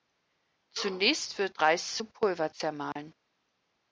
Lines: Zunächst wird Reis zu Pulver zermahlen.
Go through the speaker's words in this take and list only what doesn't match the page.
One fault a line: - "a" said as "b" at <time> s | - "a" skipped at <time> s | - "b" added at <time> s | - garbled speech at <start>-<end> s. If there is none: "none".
none